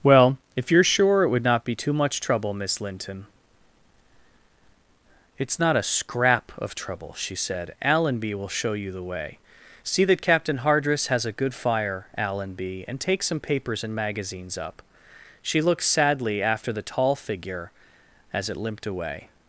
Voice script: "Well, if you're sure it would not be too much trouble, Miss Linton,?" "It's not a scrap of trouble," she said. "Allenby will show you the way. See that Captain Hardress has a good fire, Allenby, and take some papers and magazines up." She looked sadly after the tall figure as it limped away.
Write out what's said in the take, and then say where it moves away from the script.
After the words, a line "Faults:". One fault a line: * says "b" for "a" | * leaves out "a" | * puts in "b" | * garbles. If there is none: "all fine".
"Well, if you're sure it would not be too much trouble, Miss Linton,?" "It's not a scrap of trouble," she said. "Allenby will show you the way. See that Captain Hardress has a good fire, Allenby, and take some papers and magazines up." She looked sadly after the tall figure as it limped away.
Faults:
all fine